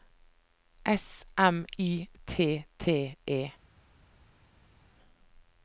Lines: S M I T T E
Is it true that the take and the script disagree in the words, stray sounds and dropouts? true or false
false